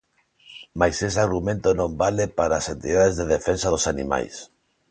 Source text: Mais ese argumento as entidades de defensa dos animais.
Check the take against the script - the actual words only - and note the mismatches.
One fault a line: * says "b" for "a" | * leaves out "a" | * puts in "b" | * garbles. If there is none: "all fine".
* puts in "non vale para"